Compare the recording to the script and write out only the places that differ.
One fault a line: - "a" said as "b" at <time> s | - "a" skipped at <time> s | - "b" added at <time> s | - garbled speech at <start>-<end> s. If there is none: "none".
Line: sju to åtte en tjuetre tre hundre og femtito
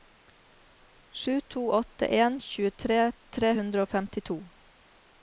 none